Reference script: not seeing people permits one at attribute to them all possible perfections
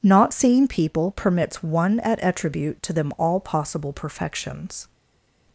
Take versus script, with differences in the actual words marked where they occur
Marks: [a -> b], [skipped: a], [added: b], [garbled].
not seeing people permits one at attribute to them all possible perfections